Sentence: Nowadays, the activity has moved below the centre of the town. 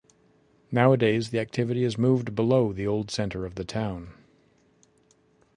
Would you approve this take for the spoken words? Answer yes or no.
no